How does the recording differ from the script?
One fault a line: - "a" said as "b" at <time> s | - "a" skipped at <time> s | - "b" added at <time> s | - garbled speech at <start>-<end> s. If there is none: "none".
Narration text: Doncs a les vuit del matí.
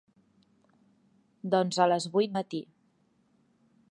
- "del" skipped at 2.3 s